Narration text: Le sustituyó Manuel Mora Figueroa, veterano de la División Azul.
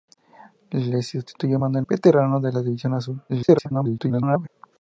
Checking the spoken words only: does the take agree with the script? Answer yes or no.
no